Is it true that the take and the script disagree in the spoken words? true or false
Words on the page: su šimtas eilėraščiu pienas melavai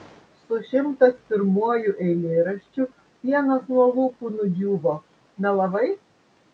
true